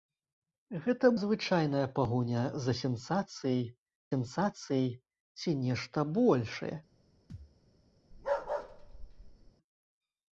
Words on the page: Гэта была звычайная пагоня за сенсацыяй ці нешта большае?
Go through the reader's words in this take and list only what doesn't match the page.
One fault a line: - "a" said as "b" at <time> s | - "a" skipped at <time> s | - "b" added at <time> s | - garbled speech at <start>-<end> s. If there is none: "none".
- "была" skipped at 1.1 s
- "сенсацыяй" added at 4.1 s